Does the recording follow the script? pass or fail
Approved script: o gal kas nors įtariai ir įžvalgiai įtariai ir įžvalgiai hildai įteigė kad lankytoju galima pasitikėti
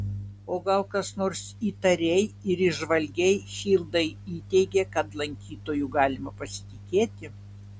fail